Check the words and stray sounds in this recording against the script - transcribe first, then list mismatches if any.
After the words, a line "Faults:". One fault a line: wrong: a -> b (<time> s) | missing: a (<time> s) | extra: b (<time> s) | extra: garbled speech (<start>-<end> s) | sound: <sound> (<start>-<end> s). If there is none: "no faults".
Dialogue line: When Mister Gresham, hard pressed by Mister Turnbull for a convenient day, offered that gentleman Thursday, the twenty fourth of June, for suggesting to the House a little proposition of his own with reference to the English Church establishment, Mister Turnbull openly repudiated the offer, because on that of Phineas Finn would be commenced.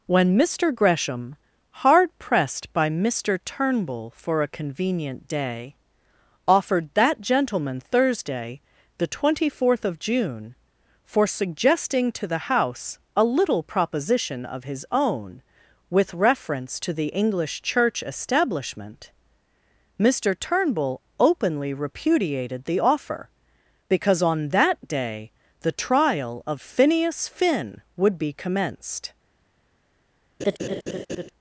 When Mister Gresham, hard pressed by Mister Turnbull for a convenient day, offered that gentleman Thursday, the twenty fourth of June, for suggesting to the House a little proposition of his own with reference to the English Church establishment, Mister Turnbull openly repudiated the offer, because on that day the trial of Phineas Finn would be commenced.
Faults:
extra: day the trial (24.9 s)
sound: laugh (30.4-31.3 s)